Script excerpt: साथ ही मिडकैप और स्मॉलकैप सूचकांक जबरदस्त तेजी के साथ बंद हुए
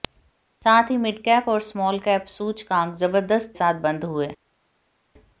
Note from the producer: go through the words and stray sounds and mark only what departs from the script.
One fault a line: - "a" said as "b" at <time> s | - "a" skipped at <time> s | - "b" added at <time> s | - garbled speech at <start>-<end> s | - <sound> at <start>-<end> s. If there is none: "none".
- "तेजी के" skipped at 3.5 s